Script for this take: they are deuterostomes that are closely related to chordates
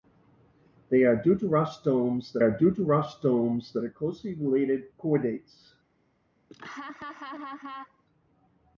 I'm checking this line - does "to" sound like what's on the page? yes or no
no